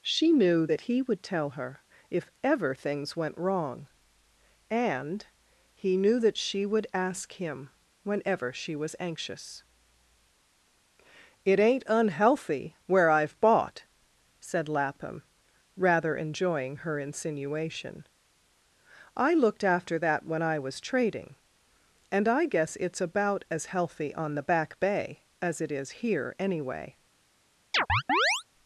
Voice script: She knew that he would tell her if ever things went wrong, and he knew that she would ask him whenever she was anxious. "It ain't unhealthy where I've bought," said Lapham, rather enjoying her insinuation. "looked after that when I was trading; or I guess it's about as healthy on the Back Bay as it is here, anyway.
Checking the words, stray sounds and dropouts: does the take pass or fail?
fail